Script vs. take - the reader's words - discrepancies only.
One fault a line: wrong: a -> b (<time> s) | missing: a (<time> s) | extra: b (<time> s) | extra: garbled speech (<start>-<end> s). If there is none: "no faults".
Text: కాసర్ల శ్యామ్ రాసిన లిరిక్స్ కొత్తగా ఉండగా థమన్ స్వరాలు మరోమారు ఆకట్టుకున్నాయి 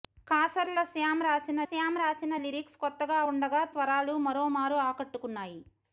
extra: శ్యామ్ రాసిన (1.7 s)
missing: థమన్ (3.6 s)